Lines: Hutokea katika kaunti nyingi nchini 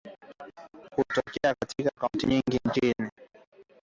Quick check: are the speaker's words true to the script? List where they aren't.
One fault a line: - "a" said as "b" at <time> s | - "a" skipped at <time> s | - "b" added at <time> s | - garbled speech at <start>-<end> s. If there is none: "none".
none